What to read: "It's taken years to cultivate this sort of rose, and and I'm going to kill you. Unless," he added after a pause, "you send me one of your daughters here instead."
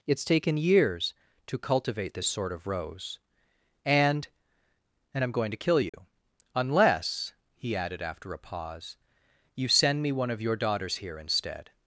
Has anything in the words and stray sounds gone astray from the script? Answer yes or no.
yes